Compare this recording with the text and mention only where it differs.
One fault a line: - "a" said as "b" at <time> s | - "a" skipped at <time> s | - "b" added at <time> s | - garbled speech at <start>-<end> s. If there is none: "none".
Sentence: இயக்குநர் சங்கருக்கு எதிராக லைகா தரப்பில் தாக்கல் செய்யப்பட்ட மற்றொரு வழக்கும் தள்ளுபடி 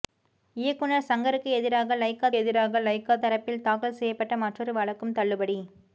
- "எதிராக லைகா" added at 2.4 s